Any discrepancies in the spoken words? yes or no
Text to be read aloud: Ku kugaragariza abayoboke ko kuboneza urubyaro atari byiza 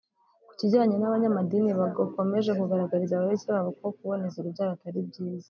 yes